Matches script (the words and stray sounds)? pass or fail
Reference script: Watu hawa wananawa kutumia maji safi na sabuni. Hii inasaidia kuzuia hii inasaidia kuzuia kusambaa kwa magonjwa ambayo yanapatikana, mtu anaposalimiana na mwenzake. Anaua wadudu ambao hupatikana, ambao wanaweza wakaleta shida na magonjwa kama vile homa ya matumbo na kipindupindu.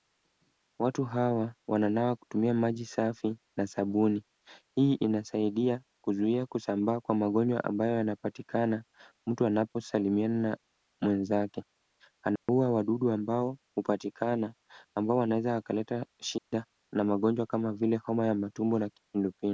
fail